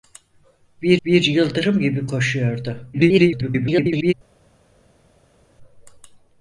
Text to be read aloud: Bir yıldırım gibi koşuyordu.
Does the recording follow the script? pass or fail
fail